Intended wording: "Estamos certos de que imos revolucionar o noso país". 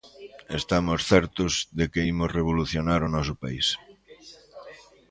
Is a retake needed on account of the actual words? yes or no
no